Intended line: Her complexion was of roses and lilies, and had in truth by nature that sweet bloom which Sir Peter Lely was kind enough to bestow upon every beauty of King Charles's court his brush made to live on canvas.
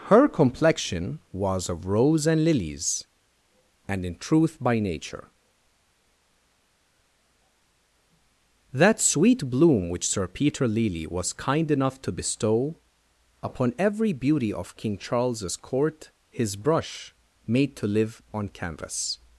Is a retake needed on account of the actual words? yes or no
yes